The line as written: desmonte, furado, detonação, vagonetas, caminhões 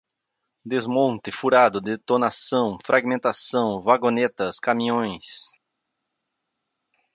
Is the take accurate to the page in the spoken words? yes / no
no